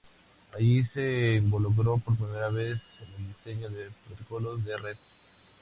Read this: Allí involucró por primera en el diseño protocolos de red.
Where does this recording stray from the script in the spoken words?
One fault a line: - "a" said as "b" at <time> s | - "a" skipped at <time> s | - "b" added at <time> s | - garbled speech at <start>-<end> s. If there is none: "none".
- "se" added at 0.9 s
- "vez" added at 2.5 s
- "de" added at 3.7 s